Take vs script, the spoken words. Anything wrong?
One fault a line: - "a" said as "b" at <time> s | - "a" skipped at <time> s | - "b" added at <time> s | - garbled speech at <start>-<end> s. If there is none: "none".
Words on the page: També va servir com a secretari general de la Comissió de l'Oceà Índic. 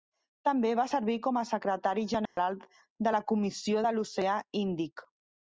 none